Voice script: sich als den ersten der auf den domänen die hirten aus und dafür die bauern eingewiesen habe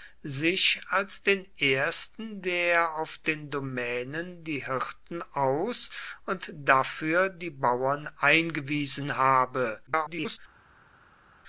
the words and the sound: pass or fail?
fail